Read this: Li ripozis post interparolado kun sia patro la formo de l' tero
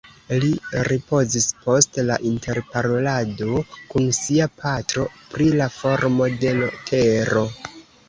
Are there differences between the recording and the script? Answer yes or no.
yes